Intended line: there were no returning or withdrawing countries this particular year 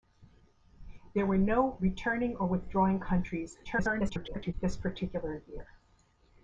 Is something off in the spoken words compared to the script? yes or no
yes